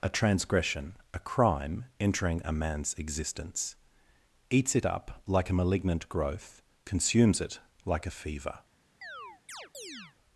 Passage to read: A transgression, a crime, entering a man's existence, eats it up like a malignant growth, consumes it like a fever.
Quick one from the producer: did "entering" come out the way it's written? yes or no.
yes